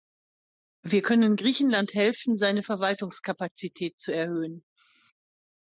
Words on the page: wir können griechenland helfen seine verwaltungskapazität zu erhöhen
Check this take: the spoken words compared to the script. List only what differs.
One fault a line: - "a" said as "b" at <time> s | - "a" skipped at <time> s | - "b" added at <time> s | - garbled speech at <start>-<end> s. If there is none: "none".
none